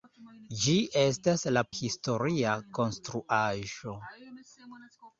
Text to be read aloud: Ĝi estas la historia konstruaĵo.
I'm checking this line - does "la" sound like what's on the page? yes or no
yes